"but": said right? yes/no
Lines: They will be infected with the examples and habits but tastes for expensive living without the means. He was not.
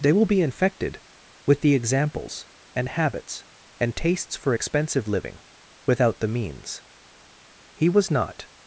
no